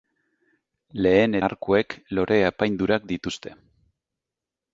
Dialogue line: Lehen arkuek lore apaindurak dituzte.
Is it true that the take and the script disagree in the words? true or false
false